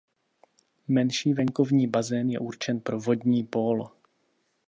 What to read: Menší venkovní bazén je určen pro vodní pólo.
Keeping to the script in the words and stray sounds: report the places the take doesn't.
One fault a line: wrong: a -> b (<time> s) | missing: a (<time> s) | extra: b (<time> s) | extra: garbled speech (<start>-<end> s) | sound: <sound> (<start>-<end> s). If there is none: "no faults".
no faults